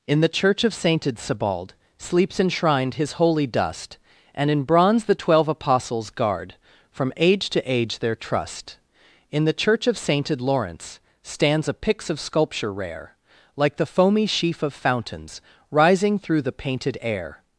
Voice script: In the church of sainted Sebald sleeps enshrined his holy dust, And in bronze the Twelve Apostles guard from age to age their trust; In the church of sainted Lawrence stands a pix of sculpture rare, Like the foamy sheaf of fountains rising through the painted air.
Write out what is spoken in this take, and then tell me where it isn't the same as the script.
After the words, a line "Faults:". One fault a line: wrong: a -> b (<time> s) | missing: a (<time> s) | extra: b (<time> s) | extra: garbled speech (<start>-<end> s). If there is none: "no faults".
In the church of sainted Sebald sleeps enshrined his holy dust, And in bronze the Twelve Apostles guard from age to age their trust; In the church of sainted Lawrence stands a pix of sculpture rare, Like the foamy sheaf of fountains rising through the painted air.
Faults:
no faults